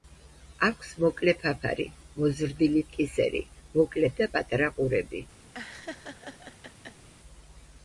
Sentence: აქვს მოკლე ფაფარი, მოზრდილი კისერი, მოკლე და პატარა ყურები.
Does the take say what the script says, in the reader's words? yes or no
yes